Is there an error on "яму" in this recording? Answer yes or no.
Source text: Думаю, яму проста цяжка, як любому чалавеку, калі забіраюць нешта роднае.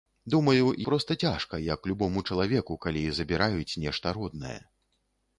yes